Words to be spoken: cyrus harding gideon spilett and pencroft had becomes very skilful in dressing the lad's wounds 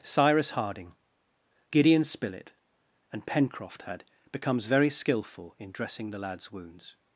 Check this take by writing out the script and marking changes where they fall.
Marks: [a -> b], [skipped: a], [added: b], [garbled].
cyrus harding gideon spilett and pencroft had becomes very skilful in dressing the lad's wounds